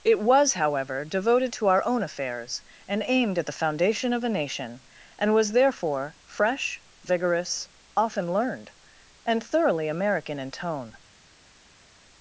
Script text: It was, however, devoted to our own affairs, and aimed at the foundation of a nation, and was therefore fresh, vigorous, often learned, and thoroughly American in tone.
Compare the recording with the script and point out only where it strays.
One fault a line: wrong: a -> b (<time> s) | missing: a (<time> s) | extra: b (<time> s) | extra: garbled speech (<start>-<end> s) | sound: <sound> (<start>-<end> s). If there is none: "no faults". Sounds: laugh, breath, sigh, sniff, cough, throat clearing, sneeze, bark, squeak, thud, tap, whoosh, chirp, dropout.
no faults